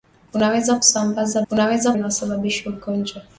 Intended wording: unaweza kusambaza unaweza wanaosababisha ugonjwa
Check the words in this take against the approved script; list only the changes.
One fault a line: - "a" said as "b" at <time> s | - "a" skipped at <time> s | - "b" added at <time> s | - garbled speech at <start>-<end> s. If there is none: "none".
none